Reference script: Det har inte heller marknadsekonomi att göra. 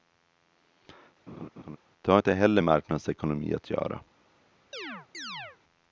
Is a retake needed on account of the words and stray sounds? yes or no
yes